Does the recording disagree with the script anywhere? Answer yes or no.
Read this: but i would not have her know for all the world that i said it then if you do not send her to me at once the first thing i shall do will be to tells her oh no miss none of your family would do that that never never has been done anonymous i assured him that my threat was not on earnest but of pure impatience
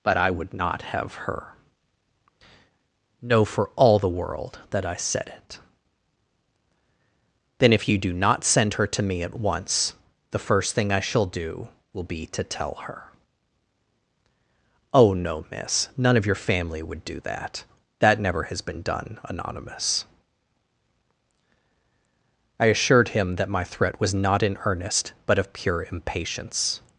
yes